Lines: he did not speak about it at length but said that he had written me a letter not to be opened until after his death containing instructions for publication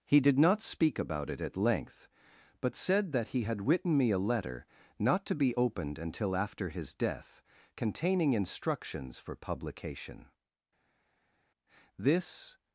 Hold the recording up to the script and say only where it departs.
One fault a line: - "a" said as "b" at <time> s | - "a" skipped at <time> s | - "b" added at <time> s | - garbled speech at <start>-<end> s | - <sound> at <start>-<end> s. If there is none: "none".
- "this" added at 12.0 s